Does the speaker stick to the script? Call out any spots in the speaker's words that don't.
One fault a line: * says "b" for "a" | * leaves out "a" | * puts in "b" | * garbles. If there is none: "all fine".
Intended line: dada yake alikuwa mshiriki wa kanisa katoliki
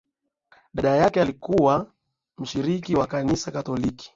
all fine